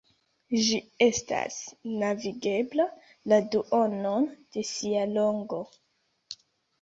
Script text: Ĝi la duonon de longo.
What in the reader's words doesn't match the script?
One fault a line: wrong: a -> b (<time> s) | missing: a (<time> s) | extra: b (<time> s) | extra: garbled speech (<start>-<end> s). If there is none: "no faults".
extra: estas navigebla (1.0 s)
extra: sia (4.7 s)